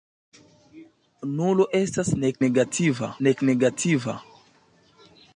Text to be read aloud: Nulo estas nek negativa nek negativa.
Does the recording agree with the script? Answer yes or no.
yes